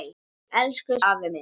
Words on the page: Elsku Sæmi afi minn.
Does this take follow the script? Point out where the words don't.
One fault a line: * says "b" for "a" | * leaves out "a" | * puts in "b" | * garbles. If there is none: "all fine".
* leaves out "Sæmi"